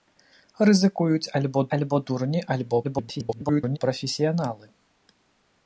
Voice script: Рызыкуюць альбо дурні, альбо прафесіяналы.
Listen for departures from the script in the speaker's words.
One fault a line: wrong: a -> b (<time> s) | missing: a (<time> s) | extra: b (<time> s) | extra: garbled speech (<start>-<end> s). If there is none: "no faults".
extra: альбо (1.8 s)
extra: garbled speech (2.8-3.8 s)